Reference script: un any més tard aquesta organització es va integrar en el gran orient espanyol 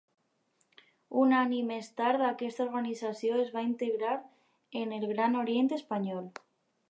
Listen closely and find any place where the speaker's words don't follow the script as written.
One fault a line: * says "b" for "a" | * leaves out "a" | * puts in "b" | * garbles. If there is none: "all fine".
all fine